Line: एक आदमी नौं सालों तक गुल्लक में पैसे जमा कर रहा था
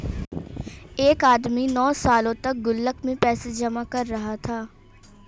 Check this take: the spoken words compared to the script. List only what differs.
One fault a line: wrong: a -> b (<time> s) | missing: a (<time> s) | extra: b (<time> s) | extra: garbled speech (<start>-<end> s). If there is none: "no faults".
no faults